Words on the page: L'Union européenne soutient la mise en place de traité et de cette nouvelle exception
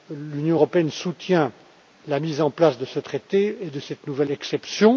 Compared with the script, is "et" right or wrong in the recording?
right